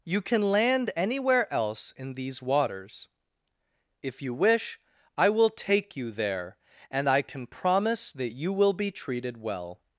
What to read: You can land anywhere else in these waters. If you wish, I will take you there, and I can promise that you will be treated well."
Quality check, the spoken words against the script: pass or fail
pass